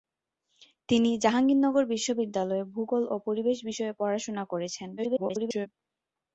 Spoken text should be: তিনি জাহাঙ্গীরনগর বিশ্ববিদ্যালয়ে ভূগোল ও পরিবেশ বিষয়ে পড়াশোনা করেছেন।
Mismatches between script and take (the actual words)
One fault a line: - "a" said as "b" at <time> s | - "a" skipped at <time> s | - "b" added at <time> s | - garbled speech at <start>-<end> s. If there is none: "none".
- garbled speech at 5.0-5.7 s